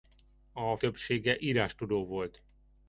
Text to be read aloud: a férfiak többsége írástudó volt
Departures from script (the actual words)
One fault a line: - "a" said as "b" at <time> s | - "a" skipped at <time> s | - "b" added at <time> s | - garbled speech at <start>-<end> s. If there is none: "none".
- "férfiak" skipped at 0.8 s